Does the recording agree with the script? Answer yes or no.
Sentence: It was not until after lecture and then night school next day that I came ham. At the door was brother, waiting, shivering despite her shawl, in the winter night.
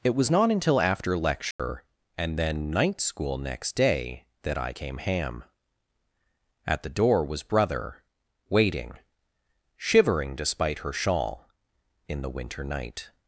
yes